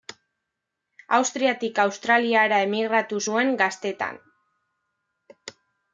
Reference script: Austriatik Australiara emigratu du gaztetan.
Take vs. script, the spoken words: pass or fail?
fail